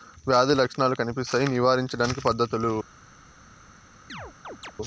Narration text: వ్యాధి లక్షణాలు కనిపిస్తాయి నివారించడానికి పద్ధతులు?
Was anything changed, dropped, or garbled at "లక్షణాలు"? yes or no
no